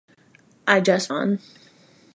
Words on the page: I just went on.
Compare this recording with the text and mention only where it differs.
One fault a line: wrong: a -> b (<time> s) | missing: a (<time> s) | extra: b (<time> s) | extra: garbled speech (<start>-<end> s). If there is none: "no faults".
missing: went (1.1 s)